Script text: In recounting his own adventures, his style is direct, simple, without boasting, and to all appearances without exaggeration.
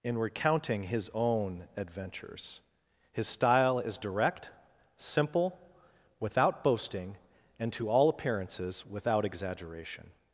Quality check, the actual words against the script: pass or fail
pass